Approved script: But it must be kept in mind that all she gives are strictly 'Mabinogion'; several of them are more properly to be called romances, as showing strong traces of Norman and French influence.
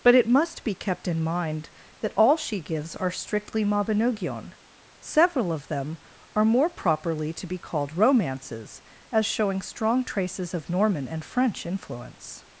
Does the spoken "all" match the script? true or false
true